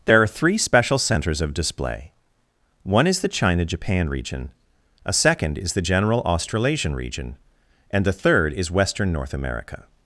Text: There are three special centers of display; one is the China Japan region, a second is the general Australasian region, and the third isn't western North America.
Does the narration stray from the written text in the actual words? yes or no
yes